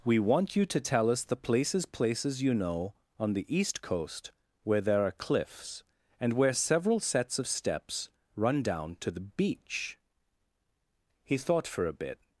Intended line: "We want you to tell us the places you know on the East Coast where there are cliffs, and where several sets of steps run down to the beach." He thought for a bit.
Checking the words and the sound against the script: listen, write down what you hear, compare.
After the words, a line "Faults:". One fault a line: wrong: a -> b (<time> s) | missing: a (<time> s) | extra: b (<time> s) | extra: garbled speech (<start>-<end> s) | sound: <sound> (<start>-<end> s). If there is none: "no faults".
"We want you to tell us the places places you know on the East Coast where there are cliffs, and where several sets of steps run down to the beach." He thought for a bit.
Faults:
extra: places (1.9 s)